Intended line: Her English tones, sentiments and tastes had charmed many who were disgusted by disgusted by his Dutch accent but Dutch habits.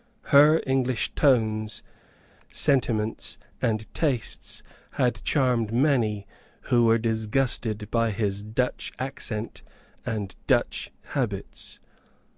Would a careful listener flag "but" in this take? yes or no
yes